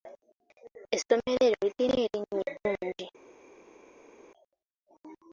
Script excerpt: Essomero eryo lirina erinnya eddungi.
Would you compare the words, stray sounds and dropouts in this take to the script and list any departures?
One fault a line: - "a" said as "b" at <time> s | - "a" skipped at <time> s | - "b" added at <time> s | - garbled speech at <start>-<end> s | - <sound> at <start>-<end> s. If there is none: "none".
none